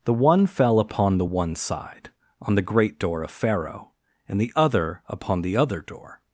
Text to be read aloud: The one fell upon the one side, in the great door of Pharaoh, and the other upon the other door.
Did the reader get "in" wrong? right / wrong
wrong